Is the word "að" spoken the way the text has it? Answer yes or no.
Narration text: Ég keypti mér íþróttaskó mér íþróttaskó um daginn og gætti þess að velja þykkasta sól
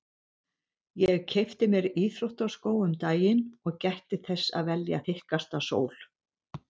yes